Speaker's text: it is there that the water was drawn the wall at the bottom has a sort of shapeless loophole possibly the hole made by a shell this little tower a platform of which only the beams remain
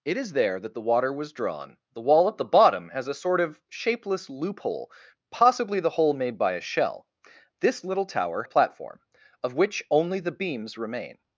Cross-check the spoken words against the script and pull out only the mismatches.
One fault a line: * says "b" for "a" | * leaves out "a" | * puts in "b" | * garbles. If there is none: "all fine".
all fine